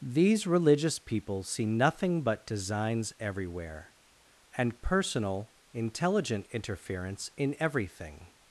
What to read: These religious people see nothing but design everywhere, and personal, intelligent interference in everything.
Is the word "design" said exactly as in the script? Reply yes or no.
no